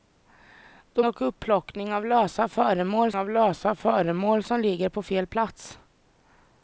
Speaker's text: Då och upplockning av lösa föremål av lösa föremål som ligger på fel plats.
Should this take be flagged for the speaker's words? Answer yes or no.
no